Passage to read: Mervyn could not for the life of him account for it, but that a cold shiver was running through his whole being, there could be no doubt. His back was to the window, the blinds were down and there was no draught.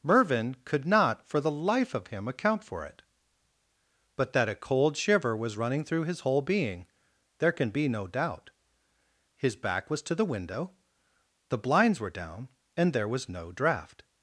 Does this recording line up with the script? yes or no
no